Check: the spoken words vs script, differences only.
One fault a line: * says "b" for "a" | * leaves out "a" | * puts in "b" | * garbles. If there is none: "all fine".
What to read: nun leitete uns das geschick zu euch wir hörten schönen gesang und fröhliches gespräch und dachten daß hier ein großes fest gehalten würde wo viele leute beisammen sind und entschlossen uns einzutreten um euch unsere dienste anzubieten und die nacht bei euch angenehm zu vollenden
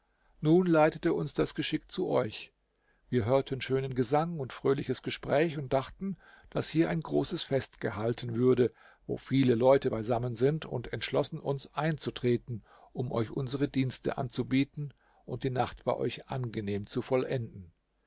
all fine